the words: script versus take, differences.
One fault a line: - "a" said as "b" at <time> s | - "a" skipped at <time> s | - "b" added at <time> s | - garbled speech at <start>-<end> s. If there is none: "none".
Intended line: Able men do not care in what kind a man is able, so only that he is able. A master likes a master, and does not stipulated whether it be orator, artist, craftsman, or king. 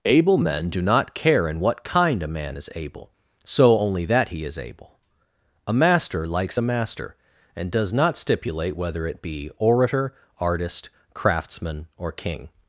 - "stipulated" said as "stipulate" at 8.2 s